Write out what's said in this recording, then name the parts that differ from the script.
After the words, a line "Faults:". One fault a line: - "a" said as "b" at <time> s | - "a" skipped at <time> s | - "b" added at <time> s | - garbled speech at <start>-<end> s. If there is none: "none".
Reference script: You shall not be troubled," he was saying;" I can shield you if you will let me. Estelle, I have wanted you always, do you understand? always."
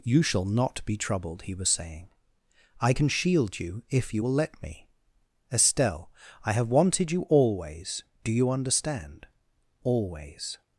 You shall not be troubled," he was saying;" I can shield you if you will let me. Estelle, I have wanted you always, do you understand? always."
Faults:
none